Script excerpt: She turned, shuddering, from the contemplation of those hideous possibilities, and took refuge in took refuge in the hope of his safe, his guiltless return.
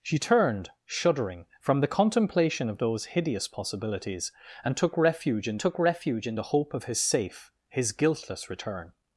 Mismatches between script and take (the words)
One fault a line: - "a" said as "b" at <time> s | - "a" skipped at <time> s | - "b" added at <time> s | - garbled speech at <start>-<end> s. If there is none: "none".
none